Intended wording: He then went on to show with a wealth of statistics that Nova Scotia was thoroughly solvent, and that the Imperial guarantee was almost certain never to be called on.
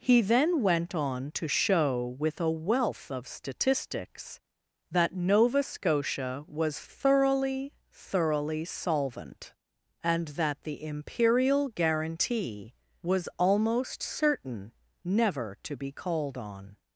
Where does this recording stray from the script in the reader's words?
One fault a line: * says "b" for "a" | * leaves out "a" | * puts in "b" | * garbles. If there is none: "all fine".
* puts in "thoroughly"